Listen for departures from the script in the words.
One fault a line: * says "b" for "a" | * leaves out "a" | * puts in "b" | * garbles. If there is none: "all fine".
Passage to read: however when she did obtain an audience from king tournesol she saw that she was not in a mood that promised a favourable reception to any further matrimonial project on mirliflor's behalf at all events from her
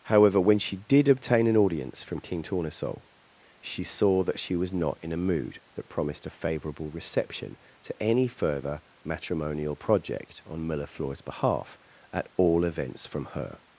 all fine